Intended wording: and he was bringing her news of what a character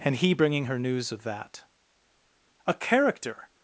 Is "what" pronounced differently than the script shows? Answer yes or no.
yes